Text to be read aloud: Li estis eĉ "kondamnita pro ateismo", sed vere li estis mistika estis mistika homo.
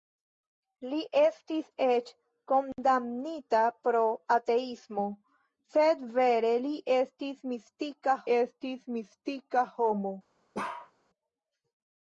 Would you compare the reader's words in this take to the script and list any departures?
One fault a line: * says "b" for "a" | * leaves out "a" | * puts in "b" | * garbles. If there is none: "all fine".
all fine